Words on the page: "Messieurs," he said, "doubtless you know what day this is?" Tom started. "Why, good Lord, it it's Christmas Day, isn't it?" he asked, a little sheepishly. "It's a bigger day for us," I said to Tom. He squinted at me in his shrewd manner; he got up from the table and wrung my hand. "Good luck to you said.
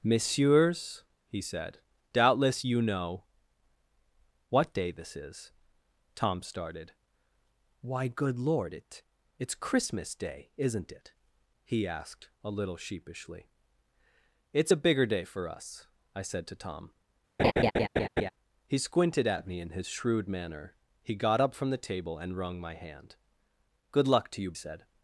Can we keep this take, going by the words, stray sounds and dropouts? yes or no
no